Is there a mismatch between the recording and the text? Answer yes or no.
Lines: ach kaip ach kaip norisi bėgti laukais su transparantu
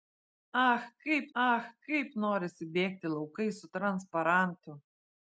no